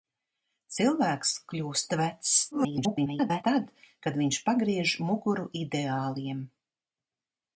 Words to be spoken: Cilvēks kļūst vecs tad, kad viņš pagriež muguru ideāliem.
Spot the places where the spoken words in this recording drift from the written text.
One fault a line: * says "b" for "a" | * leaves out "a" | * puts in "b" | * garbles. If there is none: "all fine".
* garbles